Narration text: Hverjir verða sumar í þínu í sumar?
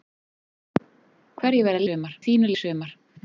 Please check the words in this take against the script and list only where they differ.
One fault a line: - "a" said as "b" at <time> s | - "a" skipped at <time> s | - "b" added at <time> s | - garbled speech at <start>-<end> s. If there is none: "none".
none